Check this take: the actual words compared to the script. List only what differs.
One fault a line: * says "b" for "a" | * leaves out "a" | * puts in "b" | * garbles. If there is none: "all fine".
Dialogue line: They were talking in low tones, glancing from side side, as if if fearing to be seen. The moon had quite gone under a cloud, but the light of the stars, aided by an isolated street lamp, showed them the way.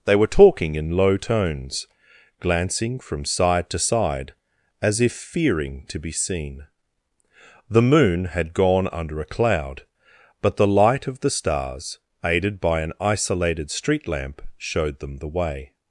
* puts in "to"
* leaves out "if"
* leaves out "quite"